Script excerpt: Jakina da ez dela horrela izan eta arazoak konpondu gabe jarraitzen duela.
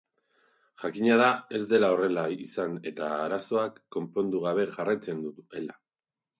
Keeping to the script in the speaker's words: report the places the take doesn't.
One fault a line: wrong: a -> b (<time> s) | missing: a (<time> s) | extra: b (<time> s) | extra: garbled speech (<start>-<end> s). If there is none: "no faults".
no faults